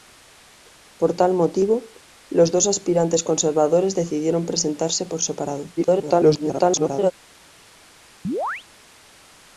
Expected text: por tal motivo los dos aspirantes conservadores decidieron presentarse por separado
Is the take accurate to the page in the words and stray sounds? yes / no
no